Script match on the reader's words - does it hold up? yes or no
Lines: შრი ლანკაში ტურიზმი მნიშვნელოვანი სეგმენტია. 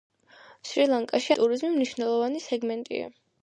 yes